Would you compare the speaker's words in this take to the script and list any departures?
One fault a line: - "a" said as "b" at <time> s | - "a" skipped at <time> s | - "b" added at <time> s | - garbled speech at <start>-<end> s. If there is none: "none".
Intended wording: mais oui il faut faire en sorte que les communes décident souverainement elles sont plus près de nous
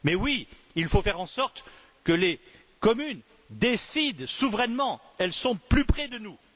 none